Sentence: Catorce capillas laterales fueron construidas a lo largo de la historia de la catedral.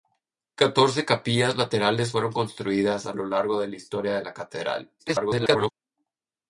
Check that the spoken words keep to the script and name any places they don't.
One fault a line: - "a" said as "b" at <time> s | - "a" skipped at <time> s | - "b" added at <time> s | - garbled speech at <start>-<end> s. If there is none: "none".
- garbled speech at 5.0-5.7 s